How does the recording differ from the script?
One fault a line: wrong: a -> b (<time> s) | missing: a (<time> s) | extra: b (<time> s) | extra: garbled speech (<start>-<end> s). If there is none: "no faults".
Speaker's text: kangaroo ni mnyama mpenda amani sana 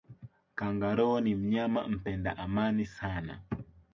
no faults